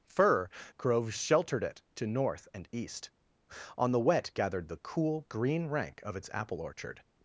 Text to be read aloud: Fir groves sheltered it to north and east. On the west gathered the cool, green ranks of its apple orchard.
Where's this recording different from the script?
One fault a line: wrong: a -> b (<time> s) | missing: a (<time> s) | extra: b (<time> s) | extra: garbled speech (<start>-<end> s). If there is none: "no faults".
wrong: west -> wet (4.0 s)
wrong: ranks -> rank (5.7 s)